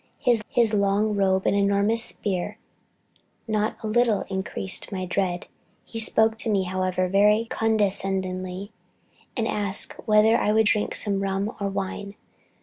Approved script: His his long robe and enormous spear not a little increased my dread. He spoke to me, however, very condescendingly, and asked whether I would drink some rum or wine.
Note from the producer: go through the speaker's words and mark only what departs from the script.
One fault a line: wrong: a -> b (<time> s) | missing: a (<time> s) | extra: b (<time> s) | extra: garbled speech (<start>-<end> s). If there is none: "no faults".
no faults